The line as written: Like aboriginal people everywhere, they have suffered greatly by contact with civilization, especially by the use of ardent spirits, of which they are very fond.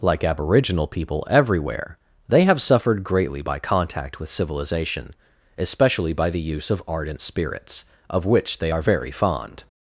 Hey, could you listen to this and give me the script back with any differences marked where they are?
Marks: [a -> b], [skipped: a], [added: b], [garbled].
Like aboriginal people everywhere, they have suffered greatly by contact with civilization, especially by the use of ardent spirits, of which they are very fond.